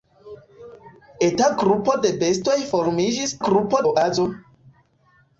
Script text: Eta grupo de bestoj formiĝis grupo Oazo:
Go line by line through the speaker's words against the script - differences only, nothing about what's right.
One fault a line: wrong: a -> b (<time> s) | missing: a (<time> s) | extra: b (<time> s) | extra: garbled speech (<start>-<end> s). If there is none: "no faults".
no faults